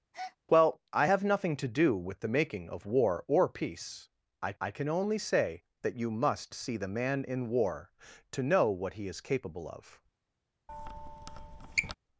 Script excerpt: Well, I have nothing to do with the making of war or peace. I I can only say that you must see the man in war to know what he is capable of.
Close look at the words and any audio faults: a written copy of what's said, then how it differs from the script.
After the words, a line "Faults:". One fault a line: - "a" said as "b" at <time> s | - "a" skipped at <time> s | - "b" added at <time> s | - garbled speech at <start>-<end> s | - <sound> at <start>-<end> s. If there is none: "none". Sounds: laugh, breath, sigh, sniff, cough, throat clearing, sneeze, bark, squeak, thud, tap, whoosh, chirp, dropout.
Well, I have nothing to do with the making of war or peace. I I can only say that you must see the man in war to know what he is capable of.
Faults:
- breath at 0.1-0.4 s
- squeak at 10.7-11.9 s